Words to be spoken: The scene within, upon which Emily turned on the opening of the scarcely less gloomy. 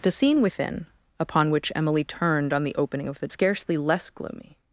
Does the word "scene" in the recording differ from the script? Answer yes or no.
no